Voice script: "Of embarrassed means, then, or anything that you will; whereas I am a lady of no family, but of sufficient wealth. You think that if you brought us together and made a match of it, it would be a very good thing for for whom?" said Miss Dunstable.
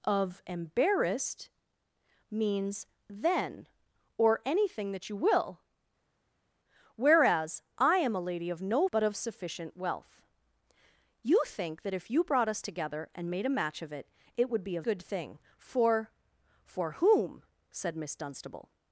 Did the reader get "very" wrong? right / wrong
wrong